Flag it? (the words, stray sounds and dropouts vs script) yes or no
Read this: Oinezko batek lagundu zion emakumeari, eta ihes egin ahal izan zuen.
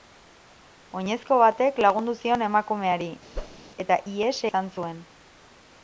yes